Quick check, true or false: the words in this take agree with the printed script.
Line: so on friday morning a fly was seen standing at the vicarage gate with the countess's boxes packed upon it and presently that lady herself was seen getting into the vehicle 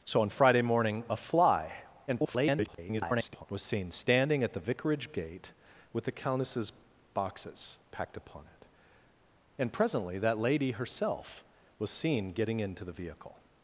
false